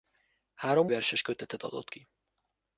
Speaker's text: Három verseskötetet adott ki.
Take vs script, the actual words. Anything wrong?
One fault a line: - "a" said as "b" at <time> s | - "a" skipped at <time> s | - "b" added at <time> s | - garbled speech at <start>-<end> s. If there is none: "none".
none